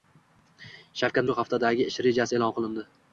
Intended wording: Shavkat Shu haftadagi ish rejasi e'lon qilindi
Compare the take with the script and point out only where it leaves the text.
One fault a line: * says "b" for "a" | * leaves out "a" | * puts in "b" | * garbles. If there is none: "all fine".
all fine